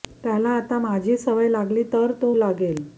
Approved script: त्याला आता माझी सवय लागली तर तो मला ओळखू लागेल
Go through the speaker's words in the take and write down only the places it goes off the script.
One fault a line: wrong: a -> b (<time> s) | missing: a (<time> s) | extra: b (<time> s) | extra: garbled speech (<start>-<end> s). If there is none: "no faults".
missing: मला ओळखू (2.3 s)